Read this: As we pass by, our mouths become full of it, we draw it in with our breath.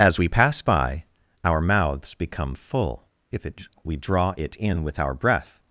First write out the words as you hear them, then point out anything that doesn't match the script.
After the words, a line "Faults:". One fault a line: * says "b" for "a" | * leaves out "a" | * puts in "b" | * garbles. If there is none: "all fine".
As we pass by, our mouths become full if it, we draw it in with our breath.
Faults:
* says "if" for "of"